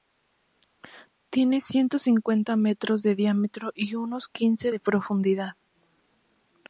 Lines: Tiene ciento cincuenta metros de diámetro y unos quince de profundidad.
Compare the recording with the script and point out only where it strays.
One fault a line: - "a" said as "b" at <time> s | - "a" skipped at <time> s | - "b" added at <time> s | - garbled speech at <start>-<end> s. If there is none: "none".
none